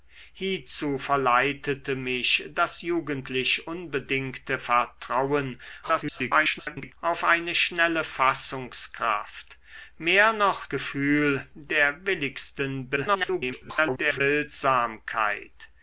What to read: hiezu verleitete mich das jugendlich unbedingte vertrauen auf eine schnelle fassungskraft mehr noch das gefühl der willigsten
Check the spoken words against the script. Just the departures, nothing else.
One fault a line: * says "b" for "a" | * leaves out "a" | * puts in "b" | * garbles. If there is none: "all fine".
* garbles
* leaves out "das"
* garbles